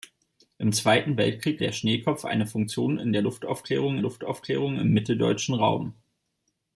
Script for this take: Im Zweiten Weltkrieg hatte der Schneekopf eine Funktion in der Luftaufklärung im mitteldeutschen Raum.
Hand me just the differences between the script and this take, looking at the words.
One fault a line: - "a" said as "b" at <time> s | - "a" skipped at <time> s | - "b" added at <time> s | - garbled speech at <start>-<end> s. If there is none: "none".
- "hatte" skipped at 1.6 s
- "Luftaufklärung" added at 4.0 s